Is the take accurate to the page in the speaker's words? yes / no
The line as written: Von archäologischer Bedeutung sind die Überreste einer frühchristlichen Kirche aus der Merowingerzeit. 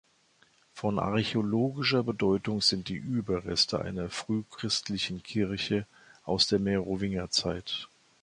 yes